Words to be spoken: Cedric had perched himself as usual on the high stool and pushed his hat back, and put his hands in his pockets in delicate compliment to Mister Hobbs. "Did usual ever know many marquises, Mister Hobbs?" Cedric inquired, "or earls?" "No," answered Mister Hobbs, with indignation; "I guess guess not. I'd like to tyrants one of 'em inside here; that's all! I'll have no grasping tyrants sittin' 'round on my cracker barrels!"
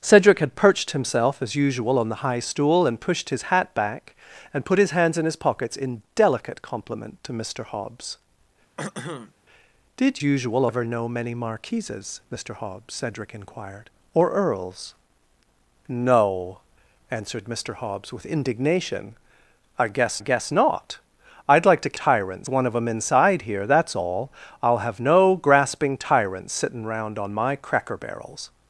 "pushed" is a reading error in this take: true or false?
false